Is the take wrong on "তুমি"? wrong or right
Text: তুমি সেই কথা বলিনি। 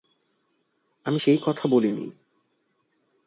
wrong